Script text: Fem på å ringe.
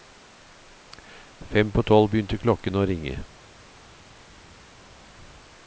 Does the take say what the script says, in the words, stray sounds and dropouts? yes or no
no